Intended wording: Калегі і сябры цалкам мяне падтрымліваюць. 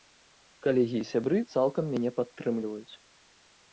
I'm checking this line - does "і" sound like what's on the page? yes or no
yes